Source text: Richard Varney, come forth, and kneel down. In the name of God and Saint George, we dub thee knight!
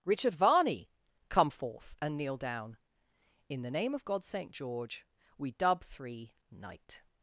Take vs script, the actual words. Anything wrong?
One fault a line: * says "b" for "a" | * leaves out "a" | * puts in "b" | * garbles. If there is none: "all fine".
* leaves out "and"
* says "three" for "thee"